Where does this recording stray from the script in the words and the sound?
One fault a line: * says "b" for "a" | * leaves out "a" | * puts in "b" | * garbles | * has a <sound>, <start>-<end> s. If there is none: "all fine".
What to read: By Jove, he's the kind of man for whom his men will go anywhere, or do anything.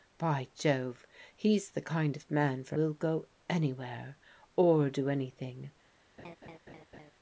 * leaves out "whom his men"
* has a laugh, 6.2-7.1 s